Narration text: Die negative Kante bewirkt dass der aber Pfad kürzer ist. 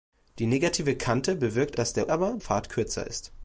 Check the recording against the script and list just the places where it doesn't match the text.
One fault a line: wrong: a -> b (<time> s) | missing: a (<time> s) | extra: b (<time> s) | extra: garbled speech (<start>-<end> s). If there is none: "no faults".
no faults